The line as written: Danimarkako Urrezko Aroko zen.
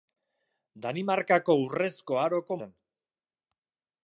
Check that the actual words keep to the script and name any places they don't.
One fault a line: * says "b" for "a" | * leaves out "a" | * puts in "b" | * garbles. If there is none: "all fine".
all fine